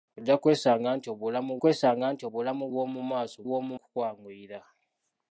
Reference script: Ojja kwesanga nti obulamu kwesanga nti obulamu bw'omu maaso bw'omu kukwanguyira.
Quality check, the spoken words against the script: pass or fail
pass